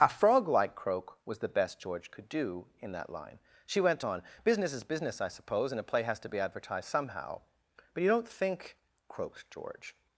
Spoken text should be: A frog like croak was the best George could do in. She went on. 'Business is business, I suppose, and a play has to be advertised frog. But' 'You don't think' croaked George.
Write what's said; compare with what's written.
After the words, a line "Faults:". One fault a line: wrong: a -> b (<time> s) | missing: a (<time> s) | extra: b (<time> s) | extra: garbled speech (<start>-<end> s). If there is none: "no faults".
A frog like croak was the best George could do in that line. She went on. 'Business is business, I suppose, and a play has to be advertised somehow. But' 'You don't think' croaked George.
Faults:
extra: that line (2.9 s)
wrong: frog -> somehow (6.9 s)